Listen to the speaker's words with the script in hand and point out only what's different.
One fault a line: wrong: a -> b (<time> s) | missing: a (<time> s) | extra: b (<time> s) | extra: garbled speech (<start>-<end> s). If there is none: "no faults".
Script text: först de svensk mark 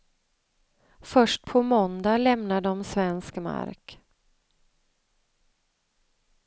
extra: på måndag lämnar (1.4 s)